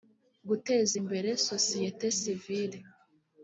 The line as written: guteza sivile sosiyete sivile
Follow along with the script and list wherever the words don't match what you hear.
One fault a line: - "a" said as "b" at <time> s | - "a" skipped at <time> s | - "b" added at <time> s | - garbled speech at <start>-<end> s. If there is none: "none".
- "sivile" said as "imbere" at 1.0 s